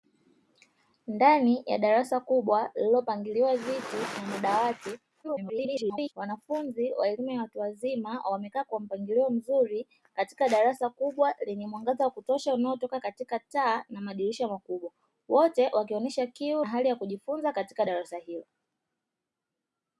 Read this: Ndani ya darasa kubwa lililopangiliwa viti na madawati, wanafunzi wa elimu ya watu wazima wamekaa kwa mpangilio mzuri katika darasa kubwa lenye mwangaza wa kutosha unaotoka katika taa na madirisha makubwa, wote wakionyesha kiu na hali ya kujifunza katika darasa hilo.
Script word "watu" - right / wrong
right